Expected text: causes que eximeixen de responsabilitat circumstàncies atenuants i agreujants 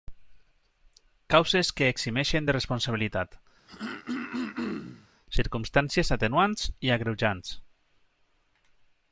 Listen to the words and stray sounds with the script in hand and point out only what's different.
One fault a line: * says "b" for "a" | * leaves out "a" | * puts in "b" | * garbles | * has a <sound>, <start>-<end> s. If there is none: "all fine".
* has a throat clearing, 3.7-5.1 s